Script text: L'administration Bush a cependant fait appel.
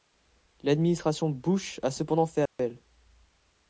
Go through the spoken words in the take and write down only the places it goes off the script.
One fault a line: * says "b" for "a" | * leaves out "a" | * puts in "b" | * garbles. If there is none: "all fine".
all fine